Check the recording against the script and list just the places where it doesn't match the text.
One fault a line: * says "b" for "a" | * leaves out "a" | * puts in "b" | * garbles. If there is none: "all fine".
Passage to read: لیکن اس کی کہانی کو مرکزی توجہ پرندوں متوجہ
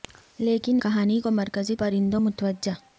* leaves out "اس کی"
* leaves out "توجہ"